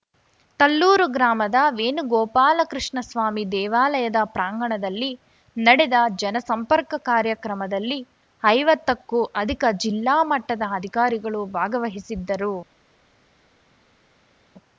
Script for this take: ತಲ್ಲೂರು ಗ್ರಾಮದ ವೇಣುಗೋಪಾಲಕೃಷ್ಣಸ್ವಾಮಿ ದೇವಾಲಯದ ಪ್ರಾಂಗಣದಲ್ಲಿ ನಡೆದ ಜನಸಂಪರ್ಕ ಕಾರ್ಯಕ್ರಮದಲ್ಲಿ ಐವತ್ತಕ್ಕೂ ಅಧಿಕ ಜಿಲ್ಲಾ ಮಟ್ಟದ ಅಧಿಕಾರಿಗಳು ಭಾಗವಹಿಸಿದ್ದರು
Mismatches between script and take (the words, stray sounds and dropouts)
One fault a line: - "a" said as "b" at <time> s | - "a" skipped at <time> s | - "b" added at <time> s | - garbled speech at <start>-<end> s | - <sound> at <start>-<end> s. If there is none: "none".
none